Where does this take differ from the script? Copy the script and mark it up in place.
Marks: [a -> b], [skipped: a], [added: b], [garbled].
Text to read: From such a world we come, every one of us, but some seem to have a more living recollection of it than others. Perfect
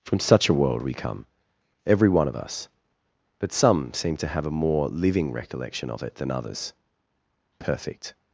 From such a world we come, every one of us, but some seem to have a more living recollection of it than others. Perfect